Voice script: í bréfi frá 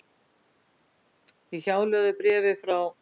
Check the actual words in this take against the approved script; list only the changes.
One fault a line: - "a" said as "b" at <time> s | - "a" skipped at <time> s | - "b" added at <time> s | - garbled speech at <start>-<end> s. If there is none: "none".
- "hjálögðu" added at 1.6 s